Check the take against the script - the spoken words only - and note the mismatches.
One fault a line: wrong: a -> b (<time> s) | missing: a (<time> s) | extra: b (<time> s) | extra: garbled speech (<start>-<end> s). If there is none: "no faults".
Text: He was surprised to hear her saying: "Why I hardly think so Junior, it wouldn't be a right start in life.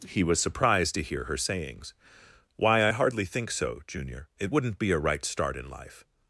wrong: saying -> sayings (1.4 s)